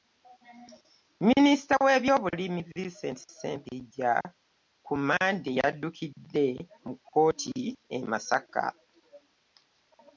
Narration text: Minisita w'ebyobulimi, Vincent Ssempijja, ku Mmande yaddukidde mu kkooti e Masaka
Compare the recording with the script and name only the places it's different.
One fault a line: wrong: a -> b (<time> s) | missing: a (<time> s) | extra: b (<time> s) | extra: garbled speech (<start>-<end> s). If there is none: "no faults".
no faults